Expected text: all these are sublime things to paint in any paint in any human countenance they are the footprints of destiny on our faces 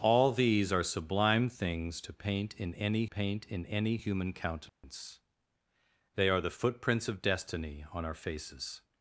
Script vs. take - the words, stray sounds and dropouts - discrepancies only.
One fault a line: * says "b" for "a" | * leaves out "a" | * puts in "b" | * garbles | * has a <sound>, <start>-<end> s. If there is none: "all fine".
* has a dropout, 4.7-4.8 s